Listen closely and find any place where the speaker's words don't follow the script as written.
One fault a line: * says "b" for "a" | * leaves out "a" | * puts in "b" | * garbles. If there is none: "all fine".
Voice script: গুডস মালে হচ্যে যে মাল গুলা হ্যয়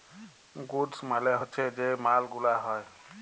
all fine